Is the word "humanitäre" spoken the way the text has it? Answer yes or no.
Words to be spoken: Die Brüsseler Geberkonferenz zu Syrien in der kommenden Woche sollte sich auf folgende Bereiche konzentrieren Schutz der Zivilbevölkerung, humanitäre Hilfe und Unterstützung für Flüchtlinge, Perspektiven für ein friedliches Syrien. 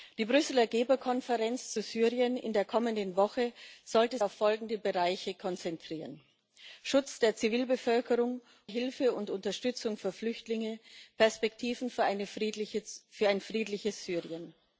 no